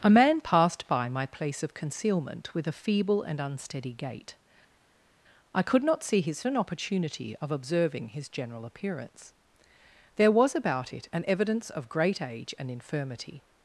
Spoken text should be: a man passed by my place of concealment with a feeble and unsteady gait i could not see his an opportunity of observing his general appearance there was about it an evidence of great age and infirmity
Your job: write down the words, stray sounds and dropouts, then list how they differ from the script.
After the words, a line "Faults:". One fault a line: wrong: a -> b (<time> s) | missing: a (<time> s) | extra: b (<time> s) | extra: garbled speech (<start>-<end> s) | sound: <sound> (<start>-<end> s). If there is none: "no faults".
a man passed by my place of concealment with a feeble and unsteady gait i could not see his an opportunity of observing his general appearance there was about it an evidence of great age and infirmity
Faults:
no faults